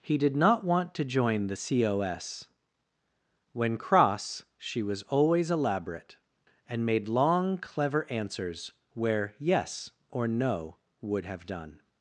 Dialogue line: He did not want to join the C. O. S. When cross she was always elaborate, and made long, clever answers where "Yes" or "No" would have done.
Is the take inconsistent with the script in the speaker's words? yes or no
no